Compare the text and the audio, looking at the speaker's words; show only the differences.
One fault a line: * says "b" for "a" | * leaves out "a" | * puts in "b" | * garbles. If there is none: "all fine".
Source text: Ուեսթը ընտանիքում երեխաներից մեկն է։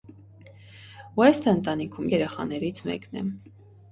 all fine